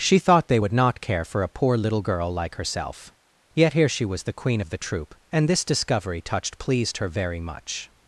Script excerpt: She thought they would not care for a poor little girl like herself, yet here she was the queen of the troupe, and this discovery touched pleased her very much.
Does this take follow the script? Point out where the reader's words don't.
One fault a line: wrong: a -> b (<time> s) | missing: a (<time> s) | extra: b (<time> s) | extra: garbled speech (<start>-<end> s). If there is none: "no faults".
no faults